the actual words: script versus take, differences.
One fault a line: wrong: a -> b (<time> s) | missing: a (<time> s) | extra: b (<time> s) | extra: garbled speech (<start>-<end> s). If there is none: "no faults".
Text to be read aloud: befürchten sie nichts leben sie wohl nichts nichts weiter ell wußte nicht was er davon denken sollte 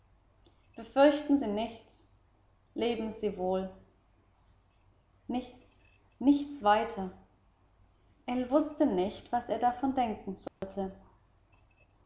no faults